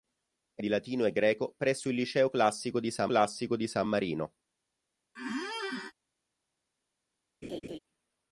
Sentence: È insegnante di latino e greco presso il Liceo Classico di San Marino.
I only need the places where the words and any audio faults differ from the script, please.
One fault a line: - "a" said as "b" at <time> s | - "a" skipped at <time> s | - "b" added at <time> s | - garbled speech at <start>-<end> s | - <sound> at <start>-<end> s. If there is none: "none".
- "insegnante" skipped at 0.6 s
- "Classico di San" added at 3.0 s
- squeak at 5.2-5.9 s
- laugh at 7.4-7.8 s